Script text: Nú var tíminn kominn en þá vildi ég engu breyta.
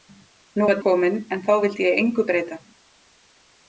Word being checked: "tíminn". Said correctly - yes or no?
no